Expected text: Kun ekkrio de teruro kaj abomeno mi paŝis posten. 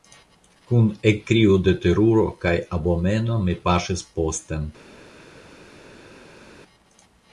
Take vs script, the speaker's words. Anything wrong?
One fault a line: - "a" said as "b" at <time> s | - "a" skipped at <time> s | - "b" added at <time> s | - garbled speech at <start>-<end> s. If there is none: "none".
none